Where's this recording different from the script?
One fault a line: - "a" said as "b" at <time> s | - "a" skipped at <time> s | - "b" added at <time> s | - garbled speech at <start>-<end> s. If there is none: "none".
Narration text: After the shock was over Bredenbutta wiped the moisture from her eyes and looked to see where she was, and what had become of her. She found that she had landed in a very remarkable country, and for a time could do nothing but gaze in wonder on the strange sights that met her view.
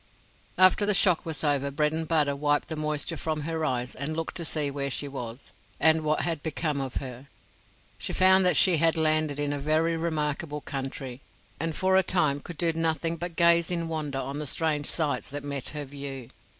none